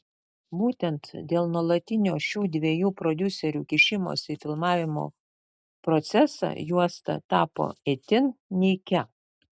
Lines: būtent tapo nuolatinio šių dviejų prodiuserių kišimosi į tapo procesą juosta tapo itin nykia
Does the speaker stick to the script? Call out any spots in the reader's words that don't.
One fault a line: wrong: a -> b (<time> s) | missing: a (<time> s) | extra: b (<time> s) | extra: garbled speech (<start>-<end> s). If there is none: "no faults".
wrong: tapo -> dėl (1.3 s)
wrong: tapo -> filmavimo (4.4 s)